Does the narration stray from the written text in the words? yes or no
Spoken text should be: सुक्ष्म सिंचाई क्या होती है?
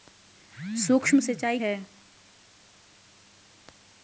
yes